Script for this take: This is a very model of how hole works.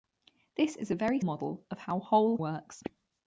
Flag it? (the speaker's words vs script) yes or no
no